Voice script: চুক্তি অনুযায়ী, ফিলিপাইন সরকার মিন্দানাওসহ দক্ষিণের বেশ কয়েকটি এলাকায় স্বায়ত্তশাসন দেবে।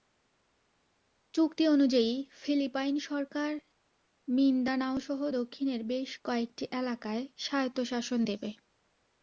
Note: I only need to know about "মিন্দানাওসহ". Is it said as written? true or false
true